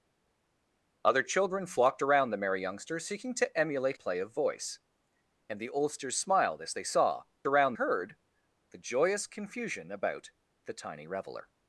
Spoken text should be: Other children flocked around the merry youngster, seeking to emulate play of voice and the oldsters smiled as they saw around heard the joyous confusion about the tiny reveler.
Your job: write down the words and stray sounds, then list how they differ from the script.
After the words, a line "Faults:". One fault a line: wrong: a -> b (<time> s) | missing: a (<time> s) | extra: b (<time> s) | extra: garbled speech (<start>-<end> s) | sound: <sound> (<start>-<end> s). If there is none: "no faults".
Other children flocked around the merry youngster, seeking to emulate play of voice and the oldsters smiled as they saw around heard the joyous confusion about the tiny reveler.
Faults:
no faults